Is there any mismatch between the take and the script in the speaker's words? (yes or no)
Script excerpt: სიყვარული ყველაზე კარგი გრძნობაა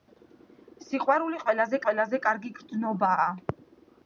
yes